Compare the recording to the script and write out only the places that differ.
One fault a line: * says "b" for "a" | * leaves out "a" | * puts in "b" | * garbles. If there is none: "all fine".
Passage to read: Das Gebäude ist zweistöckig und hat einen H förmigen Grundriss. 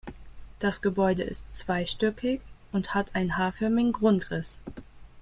all fine